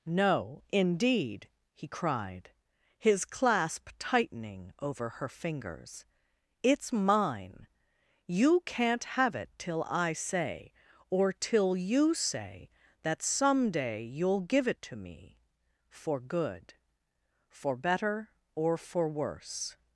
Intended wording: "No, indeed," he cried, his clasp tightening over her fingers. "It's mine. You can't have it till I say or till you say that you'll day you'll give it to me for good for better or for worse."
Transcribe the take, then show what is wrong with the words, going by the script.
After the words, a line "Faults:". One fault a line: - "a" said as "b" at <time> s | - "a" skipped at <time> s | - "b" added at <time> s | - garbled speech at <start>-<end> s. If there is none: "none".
"No, indeed," he cried, his clasp tightening over her fingers. "It's mine. You can't have it till I say or till you say that some day you'll give it to me for good for better or for worse."
Faults:
- "you'll" said as "some" at 13.2 s